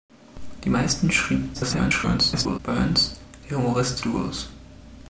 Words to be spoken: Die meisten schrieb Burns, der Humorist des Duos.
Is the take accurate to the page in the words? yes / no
no